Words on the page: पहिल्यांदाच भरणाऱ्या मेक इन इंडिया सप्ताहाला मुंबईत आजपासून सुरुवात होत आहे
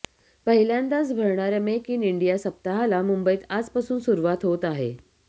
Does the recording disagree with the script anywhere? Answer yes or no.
no